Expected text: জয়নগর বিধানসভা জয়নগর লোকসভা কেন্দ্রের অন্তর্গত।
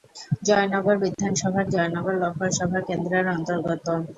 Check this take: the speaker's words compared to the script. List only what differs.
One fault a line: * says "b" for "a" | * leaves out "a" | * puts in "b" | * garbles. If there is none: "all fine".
all fine